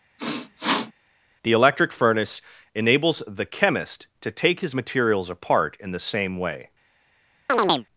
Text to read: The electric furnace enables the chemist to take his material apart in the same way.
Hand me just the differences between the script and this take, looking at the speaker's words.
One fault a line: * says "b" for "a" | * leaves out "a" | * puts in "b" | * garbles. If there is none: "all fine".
* says "materials" for "material"